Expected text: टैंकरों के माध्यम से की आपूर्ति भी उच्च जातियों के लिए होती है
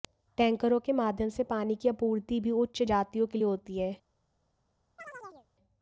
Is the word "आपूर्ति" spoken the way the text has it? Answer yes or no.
yes